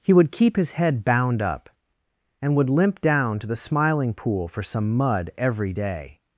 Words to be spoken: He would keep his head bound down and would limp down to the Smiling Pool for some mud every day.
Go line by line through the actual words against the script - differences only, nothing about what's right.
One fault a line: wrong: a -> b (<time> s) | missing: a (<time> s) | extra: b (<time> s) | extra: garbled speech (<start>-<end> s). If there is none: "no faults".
wrong: down -> up (1.4 s)